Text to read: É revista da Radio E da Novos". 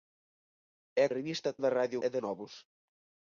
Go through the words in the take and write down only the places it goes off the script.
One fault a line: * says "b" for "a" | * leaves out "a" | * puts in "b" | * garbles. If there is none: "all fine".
all fine